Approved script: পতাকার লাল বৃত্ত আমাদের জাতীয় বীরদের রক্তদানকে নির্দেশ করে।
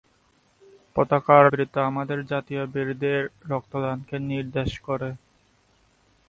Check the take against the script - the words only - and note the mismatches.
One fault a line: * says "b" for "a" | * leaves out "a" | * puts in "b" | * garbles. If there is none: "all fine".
* leaves out "লাল"